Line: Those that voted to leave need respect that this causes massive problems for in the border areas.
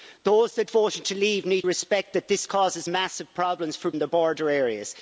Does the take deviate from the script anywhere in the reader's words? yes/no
no